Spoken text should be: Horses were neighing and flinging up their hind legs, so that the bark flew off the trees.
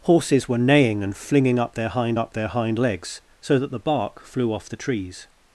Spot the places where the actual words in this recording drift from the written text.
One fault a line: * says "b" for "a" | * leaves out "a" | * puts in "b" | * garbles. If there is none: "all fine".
* puts in "up their hind"